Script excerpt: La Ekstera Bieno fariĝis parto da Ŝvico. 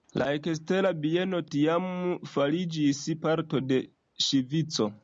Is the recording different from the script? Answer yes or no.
yes